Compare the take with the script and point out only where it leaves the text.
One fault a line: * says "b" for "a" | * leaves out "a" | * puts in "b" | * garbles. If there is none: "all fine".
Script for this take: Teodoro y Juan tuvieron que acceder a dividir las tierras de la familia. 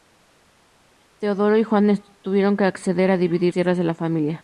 * leaves out "las"